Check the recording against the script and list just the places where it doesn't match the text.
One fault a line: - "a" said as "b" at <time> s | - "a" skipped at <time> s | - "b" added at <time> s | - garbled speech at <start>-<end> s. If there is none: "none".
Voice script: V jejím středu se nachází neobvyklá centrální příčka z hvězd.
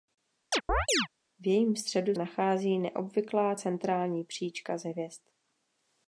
- "se" skipped at 2.1 s